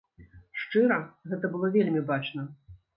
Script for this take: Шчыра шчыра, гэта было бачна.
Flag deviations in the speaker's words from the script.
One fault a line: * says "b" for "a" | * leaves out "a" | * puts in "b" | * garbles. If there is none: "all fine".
* leaves out "шчыра"
* puts in "вельмі"